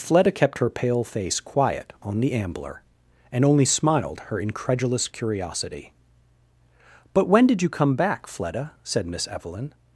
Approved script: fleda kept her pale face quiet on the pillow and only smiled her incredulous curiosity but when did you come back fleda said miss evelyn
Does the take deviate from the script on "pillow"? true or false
true